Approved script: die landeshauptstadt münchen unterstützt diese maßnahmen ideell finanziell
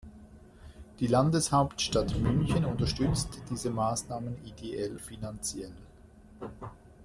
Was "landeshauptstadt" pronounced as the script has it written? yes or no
yes